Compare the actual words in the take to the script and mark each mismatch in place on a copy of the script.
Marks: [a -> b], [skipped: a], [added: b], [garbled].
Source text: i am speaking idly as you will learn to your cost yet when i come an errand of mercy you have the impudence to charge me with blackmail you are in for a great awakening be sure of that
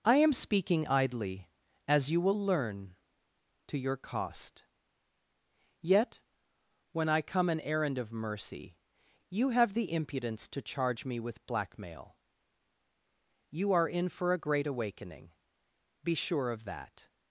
i am speaking idly as you will learn to your cost yet when i come an errand of mercy you have the impudence to charge me with blackmail you are in for a great awakening be sure of that